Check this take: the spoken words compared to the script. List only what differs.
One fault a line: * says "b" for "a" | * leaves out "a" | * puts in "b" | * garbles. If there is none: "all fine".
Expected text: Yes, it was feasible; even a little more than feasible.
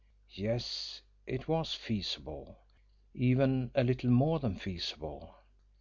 all fine